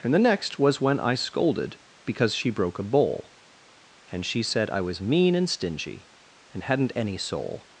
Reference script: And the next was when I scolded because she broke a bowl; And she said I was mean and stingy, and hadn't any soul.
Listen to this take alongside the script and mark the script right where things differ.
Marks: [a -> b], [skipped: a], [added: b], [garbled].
And the next was when I scolded because she broke a bowl; And she said I was mean and stingy, and hadn't any soul.